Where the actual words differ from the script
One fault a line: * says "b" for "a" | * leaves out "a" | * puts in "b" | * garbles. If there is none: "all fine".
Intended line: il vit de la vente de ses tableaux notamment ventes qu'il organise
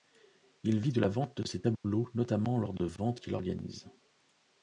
* puts in "lors de"